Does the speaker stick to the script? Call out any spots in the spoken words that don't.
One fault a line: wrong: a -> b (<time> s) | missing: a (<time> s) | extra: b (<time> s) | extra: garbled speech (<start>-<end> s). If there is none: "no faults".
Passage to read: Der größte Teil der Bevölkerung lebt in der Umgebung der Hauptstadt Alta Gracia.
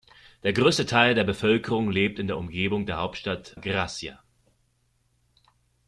missing: Alta (3.5 s)